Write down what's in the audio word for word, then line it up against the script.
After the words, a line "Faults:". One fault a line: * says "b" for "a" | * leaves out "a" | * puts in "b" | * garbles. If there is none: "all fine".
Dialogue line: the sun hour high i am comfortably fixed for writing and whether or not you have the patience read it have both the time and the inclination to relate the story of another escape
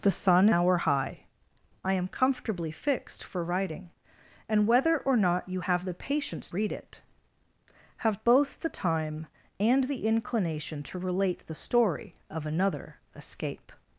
the sun hour high i am comfortably fixed for writing and whether or not you have the patience read it have both the time and the inclination to relate the story of another escape
Faults:
all fine